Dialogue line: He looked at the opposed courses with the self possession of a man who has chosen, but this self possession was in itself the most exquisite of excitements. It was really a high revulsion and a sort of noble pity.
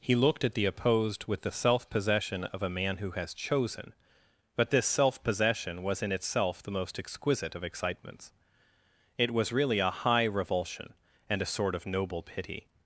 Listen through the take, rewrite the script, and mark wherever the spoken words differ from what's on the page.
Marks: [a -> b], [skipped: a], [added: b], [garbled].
He looked at the opposed [skipped: courses] with the self possession of a man who has chosen, but this self possession was in itself the most exquisite of excitements. It was really a high revulsion and a sort of noble pity.